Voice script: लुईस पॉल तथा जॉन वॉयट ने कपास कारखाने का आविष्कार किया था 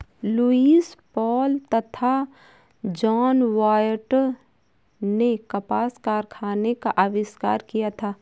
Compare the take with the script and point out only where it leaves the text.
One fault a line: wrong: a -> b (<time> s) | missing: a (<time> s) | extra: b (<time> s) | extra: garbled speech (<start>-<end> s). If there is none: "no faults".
no faults